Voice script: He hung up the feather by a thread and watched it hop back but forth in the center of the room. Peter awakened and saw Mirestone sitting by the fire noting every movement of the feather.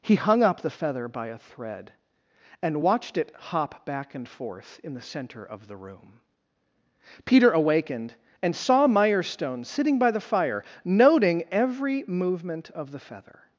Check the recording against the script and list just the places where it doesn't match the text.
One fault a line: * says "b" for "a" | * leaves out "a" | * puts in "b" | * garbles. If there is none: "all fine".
* says "and" for "but"